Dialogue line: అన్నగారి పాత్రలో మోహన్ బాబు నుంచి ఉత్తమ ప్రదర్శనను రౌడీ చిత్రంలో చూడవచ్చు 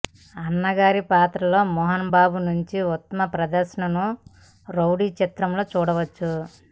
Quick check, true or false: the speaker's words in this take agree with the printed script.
true